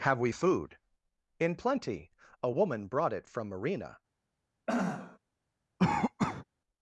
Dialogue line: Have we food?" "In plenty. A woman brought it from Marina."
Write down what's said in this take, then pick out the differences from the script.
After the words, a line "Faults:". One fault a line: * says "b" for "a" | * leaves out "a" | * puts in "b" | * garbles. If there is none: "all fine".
Have we food?" "In plenty. A woman brought it from Marina."
Faults:
all fine